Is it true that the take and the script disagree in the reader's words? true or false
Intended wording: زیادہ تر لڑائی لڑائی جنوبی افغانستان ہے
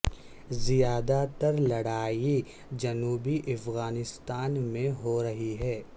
true